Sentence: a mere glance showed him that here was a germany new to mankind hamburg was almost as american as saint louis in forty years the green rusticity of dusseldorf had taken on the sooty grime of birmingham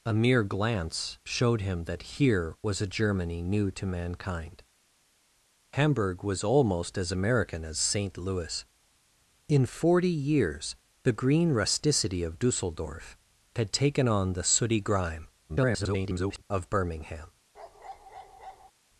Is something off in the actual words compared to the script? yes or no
yes